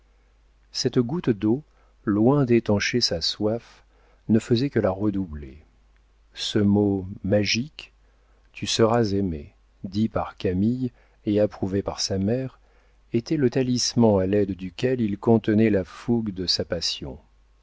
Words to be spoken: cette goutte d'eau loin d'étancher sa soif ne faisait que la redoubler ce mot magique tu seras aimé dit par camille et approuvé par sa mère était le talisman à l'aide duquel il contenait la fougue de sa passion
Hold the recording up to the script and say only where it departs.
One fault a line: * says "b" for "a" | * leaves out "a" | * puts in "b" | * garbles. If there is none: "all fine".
all fine